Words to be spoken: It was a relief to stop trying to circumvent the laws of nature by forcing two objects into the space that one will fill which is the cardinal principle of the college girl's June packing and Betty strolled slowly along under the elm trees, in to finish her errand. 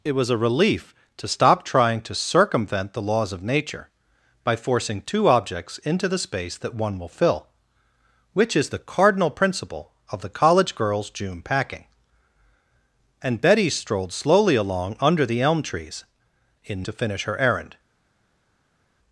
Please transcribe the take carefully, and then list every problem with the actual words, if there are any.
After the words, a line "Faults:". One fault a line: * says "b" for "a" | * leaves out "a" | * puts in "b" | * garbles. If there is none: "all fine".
It was a relief to stop trying to circumvent the laws of nature by forcing two objects into the space that one will fill which is the cardinal principle of the college girl's June packing and Betty strolled slowly along under the elm trees, in to finish her errand.
Faults:
all fine